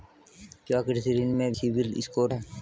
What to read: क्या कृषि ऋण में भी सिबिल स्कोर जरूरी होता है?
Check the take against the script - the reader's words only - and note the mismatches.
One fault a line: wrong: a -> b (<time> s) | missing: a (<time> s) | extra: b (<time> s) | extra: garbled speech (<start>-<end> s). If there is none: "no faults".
missing: भी (1.5 s)
missing: जरूरी होता (2.3 s)